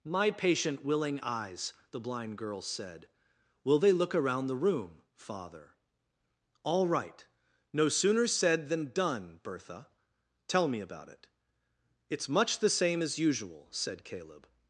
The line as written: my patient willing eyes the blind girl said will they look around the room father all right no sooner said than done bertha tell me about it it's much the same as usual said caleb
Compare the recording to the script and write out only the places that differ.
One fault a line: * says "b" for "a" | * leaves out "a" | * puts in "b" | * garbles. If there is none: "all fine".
all fine